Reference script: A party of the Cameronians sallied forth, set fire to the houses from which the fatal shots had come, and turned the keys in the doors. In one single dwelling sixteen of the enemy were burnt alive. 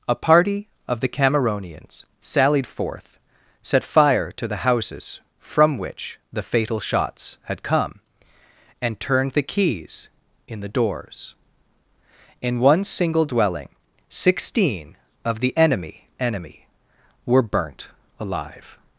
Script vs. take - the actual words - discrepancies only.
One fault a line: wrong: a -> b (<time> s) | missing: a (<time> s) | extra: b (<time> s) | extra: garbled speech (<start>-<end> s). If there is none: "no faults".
extra: enemy (16.2 s)